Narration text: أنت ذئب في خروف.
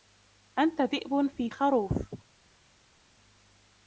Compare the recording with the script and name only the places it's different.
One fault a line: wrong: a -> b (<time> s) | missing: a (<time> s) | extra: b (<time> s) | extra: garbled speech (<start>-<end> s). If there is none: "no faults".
no faults